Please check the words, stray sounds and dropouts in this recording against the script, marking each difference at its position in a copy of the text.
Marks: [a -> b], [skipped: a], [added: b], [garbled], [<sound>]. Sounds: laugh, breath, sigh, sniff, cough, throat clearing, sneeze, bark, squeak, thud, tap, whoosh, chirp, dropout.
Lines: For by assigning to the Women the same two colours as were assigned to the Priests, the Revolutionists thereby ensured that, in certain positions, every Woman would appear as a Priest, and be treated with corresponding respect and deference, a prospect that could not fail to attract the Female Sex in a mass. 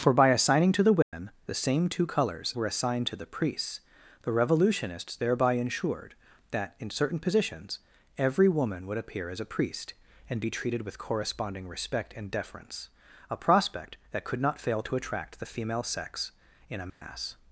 For by assigning to the Women [dropout] the same two colours [skipped: as] were assigned to the Priests, the Revolutionists thereby ensured that, in certain positions, every Woman would appear as a Priest, and be treated with corresponding respect and deference, a prospect that could not fail to attract the Female Sex in a mass. [dropout]